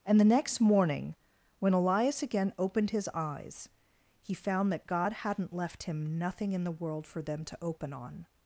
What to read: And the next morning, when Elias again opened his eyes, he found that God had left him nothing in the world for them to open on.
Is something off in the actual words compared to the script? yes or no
yes